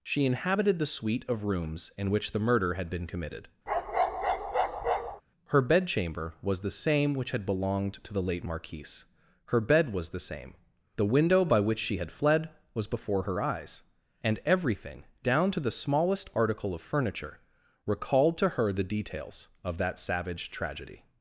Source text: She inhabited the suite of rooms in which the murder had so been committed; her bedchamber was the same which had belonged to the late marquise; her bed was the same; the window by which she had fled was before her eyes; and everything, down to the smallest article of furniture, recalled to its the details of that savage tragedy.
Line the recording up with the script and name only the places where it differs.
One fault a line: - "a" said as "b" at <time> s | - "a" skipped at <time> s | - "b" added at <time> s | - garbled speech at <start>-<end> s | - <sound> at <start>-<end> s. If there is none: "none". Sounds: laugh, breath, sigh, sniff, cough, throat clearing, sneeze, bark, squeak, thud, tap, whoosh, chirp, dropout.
- "so" skipped at 2.9 s
- bark at 3.7-5.2 s
- "its" said as "her" at 18.5 s